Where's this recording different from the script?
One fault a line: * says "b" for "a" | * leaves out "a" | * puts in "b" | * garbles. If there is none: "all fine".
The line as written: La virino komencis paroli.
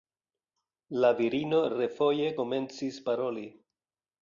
* puts in "refoje"